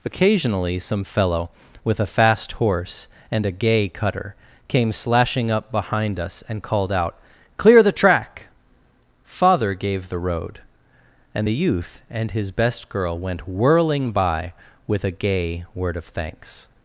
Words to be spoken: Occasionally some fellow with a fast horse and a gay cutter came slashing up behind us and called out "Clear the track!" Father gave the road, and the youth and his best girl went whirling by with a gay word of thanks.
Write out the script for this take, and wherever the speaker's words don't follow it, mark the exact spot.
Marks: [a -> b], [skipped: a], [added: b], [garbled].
Occasionally some fellow with a fast horse and a gay cutter came slashing up behind us and called out "Clear the track!" Father gave the road, and the youth and his best girl went whirling by with a gay word of thanks.